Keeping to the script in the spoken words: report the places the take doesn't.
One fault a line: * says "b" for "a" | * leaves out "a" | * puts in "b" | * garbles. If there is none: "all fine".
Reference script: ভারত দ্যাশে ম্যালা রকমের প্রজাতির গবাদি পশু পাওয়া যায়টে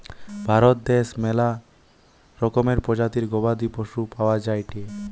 all fine